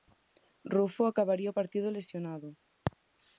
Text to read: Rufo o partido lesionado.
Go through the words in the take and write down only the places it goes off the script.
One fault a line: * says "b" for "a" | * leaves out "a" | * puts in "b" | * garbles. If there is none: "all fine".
* puts in "acabaría"